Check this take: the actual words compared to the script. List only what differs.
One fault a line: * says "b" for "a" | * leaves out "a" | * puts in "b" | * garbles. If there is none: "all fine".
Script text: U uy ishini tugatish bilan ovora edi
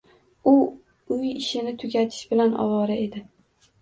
all fine